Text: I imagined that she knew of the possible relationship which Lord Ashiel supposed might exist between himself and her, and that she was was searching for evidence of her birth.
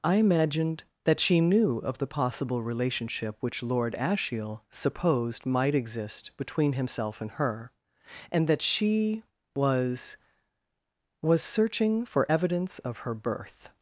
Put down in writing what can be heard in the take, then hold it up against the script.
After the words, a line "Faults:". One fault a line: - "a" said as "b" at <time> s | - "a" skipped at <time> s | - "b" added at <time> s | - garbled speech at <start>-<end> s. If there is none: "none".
I imagined that she knew of the possible relationship which Lord Ashiel supposed might exist between himself and her, and that she was was searching for evidence of her birth.
Faults:
none